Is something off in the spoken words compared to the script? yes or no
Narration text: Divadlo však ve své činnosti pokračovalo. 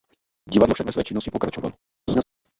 no